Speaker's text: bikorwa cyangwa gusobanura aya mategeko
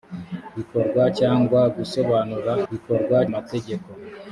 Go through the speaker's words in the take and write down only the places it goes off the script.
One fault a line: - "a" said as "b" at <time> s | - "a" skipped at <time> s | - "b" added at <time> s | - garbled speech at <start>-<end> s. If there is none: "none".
- "aya" said as "bikorwa" at 2.7 s